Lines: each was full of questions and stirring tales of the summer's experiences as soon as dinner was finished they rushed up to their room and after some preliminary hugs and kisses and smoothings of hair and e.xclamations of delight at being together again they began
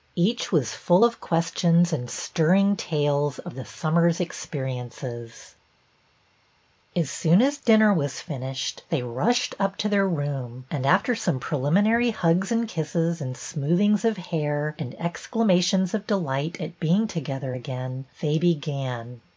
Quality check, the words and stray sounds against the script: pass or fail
pass